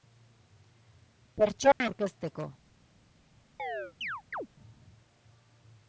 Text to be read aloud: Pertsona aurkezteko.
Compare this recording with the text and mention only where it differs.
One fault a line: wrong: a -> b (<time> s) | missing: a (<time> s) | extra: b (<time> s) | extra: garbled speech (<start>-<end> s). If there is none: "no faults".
no faults